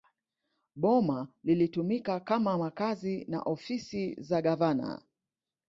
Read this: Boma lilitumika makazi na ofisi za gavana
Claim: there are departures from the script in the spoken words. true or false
true